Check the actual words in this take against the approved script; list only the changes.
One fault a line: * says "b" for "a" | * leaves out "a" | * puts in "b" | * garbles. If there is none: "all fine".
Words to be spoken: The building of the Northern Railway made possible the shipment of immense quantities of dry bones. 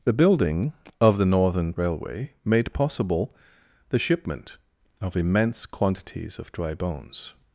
all fine